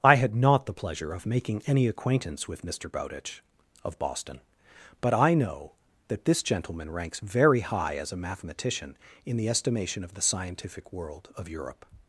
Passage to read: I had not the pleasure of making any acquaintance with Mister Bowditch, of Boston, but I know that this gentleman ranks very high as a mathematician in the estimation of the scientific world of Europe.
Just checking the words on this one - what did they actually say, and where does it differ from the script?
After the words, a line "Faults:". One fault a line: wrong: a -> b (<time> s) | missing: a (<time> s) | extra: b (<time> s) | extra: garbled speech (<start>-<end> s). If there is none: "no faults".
I had not the pleasure of making any acquaintance with Mister Bowditch, of Boston, but I know that this gentleman ranks very high as a mathematician in the estimation of the scientific world of Europe.
Faults:
no faults